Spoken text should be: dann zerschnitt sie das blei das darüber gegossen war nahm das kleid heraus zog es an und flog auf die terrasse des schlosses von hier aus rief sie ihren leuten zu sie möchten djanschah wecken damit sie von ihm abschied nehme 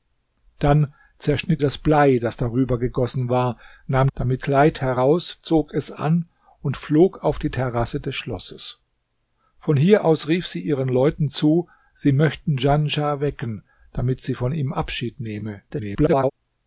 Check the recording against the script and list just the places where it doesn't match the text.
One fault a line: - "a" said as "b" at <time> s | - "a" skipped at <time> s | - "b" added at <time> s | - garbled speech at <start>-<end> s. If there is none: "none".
- "sie" skipped at 1.6 s
- "das" said as "damit" at 4.1 s
- garbled speech at 15.7-16.3 s